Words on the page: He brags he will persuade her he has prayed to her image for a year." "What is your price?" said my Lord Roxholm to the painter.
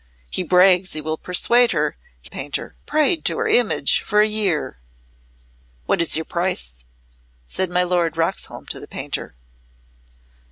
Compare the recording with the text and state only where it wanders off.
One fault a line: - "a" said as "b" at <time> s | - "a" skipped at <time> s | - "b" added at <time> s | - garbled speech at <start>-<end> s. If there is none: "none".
- "has" said as "painter" at 2.3 s